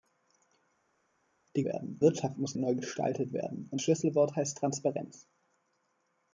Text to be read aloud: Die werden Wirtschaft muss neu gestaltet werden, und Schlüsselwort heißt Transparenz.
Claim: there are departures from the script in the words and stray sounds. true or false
false